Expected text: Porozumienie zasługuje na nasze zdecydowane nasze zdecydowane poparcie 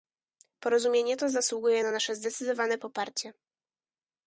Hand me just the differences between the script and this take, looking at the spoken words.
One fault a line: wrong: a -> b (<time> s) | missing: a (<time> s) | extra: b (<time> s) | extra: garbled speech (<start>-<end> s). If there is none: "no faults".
extra: to (1.2 s)
missing: nasze zdecydowane (2.8 s)